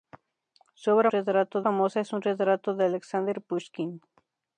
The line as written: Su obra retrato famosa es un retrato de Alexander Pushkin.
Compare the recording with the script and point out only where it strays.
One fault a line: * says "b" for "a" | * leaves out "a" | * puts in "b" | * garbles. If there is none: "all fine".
all fine